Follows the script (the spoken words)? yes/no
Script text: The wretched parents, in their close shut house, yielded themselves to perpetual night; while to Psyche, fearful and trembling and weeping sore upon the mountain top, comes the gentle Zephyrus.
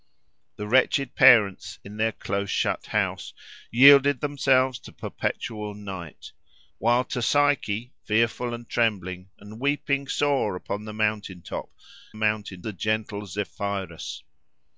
no